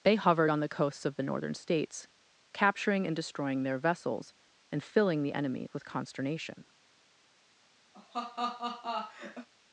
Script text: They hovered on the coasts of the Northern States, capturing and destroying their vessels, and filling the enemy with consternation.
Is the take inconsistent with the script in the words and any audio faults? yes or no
yes